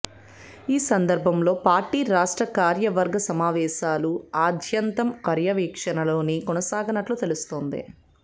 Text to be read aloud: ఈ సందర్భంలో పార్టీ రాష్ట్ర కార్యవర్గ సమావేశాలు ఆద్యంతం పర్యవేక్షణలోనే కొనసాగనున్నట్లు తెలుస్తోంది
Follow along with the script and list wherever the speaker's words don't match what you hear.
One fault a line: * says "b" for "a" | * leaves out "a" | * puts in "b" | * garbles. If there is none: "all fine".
all fine